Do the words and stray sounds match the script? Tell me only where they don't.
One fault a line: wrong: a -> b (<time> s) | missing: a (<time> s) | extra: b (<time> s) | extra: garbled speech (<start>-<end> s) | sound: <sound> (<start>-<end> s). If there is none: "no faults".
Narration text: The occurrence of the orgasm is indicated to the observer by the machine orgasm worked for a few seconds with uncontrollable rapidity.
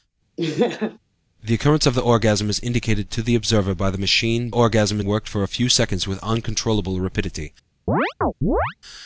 sound: laugh (0.4-1.0 s)
sound: chirp (7.9-8.7 s)